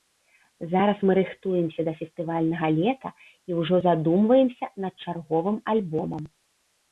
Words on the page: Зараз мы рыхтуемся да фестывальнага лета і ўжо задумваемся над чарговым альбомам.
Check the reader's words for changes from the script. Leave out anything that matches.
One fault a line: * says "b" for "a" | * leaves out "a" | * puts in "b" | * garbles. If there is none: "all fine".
all fine